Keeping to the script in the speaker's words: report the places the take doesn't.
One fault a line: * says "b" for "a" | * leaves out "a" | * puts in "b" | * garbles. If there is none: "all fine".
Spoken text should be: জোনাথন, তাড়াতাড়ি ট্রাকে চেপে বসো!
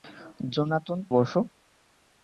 * leaves out "তাড়াতাড়ি ট্রাকে চেপে"